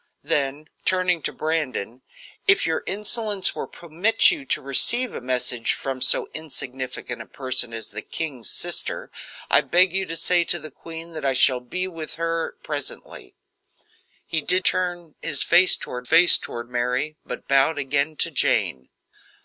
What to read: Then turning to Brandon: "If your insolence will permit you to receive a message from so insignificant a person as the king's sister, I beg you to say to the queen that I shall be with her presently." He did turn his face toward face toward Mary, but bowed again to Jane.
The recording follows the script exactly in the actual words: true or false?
true